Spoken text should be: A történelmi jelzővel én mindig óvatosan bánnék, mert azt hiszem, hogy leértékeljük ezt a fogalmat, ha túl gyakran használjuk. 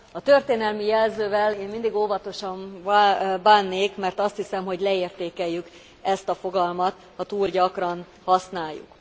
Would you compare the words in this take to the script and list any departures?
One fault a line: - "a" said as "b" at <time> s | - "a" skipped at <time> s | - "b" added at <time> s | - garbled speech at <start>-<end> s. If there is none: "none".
none